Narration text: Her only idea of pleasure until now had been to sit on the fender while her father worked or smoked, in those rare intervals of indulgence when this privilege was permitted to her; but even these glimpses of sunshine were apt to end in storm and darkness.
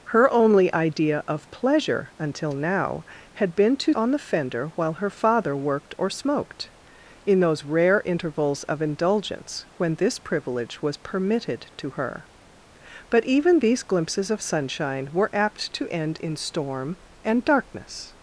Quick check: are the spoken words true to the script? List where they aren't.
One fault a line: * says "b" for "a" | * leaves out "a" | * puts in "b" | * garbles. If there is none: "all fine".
* leaves out "sit"